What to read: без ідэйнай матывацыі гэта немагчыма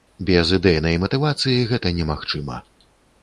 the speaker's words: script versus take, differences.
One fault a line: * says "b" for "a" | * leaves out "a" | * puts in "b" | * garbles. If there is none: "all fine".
all fine